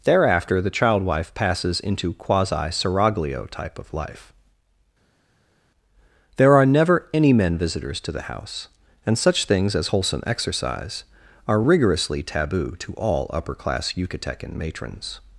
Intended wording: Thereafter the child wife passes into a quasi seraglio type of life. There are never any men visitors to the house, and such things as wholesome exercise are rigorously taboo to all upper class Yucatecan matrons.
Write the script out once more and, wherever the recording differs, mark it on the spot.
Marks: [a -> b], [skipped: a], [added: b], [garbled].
Thereafter the child wife passes into [skipped: a] quasi seraglio type of life. There are never any men visitors to the house, and such things as wholesome exercise are rigorously taboo to all upper class Yucatecan matrons.